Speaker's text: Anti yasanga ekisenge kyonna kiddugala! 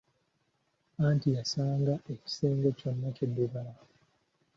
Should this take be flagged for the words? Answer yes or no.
no